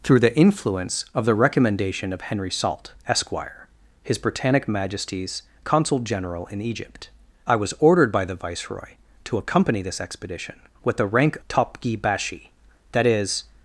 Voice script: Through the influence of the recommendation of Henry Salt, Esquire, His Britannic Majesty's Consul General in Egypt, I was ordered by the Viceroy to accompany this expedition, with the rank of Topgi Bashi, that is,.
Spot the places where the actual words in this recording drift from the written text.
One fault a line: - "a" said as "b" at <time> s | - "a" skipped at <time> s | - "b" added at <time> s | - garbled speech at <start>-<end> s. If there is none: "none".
- "of" skipped at 11.4 s